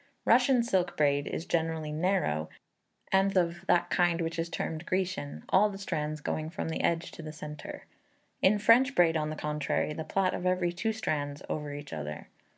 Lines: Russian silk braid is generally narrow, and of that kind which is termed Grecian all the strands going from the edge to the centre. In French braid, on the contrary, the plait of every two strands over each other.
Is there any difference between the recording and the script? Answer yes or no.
no